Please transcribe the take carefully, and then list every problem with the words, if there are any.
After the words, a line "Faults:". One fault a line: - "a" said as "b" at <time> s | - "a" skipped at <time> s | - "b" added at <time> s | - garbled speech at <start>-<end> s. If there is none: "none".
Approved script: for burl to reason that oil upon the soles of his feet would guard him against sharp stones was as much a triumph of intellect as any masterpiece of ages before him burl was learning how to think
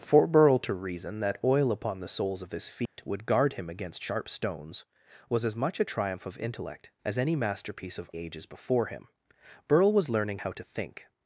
for burl to reason that oil upon the soles of his feet would guard him against sharp stones was as much a triumph of intellect as any masterpiece of ages before him burl was learning how to think
Faults:
none